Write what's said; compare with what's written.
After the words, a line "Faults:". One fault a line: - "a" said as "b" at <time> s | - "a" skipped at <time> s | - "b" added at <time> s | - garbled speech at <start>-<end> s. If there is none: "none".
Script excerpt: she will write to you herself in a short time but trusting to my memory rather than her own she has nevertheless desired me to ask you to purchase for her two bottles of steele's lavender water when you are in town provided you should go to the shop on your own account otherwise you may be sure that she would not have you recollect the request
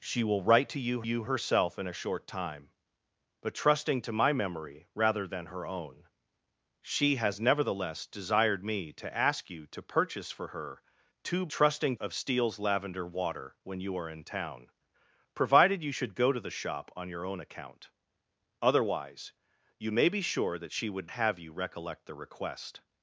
she will write to you you herself in a short time but trusting to my memory rather than her own she has nevertheless desired me to ask you to purchase for her two trusting of steele's lavender water when you are in town provided you should go to the shop on your own account otherwise you may be sure that she would have you recollect the request
Faults:
- "you" added at 1.0 s
- "bottles" said as "trusting" at 11.5 s
- "not" skipped at 21.1 s